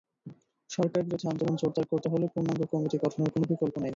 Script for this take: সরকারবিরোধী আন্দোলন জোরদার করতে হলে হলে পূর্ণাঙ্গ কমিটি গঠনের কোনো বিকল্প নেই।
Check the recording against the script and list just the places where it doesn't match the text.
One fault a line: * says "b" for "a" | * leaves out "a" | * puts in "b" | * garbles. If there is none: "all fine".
* leaves out "হলে"